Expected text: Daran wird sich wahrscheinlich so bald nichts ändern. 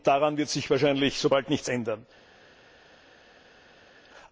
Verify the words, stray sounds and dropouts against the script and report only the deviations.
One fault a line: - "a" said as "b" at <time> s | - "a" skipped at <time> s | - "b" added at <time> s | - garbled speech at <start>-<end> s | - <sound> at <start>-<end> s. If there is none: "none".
none